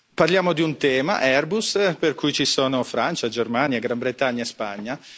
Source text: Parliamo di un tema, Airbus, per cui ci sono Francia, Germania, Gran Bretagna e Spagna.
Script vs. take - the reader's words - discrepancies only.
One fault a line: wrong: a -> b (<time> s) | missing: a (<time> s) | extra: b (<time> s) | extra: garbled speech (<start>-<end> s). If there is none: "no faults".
no faults